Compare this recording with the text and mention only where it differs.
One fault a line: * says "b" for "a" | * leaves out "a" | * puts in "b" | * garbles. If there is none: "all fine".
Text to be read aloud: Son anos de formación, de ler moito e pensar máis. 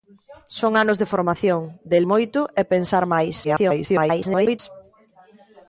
* leaves out "ler"
* garbles